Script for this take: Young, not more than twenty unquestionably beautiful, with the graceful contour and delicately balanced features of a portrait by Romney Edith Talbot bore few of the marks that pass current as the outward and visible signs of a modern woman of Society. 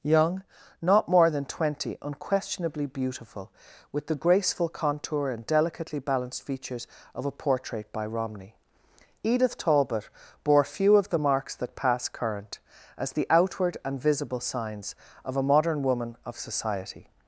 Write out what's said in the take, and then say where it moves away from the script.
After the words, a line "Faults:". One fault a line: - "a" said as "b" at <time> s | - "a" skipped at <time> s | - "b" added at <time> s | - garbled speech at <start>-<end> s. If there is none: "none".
Young, not more than twenty unquestionably beautiful, with the graceful contour and delicately balanced features of a portrait by Romney Edith Talbot bore few of the marks that pass current as the outward and visible signs of a modern woman of Society.
Faults:
none